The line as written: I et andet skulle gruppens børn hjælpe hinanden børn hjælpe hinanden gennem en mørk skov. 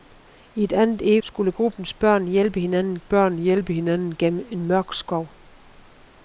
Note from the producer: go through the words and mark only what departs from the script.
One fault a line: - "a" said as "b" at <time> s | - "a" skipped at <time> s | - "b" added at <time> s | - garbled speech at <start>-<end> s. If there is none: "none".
none